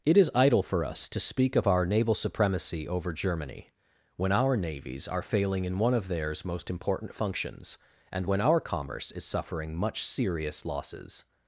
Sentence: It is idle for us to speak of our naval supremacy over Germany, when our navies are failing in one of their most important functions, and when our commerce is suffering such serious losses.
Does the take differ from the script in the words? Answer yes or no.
yes